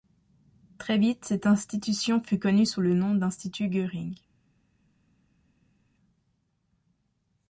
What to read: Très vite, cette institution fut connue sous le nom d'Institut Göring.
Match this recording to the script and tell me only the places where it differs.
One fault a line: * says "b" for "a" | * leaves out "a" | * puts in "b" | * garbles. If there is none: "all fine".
all fine